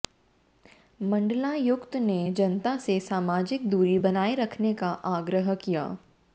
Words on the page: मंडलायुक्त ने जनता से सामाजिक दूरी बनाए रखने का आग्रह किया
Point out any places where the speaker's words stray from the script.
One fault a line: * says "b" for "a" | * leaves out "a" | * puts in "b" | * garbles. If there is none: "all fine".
all fine